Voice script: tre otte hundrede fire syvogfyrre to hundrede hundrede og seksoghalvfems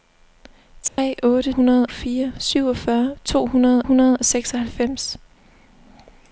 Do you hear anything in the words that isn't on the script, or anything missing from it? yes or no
no